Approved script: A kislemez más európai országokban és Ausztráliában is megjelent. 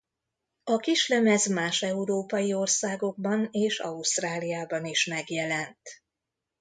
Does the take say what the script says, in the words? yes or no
yes